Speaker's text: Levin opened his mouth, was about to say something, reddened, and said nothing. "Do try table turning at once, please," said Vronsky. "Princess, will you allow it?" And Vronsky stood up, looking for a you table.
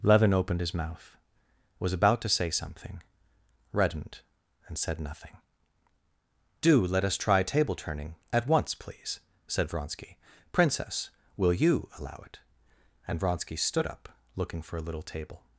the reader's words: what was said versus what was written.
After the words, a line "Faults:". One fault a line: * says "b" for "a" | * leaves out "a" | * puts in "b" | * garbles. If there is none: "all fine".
Levin opened his mouth, was about to say something, reddened, and said nothing. "Do let us try table turning at once, please," said Vronsky. "Princess, will you allow it?" And Vronsky stood up, looking for a little table.
Faults:
* puts in "let us"
* says "little" for "you"